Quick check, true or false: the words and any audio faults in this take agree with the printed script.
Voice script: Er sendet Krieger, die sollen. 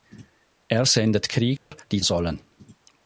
false